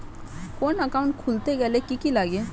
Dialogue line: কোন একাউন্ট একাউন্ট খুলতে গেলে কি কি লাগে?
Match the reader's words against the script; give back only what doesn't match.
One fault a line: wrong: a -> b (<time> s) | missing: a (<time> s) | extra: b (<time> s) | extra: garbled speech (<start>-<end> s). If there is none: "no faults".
missing: একাউন্ট (1.1 s)